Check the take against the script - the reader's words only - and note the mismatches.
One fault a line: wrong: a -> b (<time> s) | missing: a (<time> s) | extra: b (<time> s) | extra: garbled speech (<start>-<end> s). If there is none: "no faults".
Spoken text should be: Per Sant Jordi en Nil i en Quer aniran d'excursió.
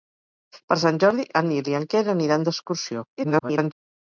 extra: garbled speech (3.2-3.7 s)